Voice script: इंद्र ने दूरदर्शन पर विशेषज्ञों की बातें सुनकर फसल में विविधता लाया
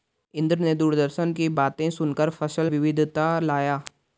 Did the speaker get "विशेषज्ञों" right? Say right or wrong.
wrong